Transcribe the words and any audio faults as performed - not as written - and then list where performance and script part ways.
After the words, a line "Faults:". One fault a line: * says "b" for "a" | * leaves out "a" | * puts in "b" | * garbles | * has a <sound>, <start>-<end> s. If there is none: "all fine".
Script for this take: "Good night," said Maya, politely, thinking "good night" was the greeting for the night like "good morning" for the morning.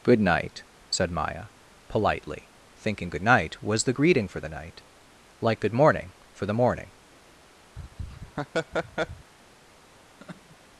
"Good night," said Maya, politely, thinking "good night" was the greeting for the night like "good morning" for the morning.
Faults:
* has a laugh, 7.8-9.3 s
* has a laugh, 10.2-10.6 s